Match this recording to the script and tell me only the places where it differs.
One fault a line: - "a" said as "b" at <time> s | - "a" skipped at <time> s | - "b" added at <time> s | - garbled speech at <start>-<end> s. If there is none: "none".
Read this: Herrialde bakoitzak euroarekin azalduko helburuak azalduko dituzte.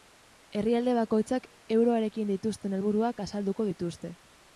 - "azalduko" said as "dituzten" at 2.3 s